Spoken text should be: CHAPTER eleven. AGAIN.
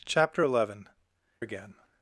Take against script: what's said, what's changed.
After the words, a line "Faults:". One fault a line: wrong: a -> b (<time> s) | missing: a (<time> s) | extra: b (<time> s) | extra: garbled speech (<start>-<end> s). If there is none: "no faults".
CHAPTER eleven. AGAIN.
Faults:
no faults